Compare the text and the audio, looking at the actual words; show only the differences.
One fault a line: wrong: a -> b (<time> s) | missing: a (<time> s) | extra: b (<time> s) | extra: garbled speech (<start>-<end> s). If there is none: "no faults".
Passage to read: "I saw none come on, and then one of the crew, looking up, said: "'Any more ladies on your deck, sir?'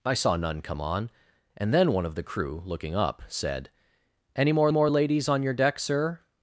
extra: more (4.7 s)